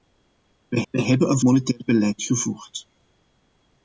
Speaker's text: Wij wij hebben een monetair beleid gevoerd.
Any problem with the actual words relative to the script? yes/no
no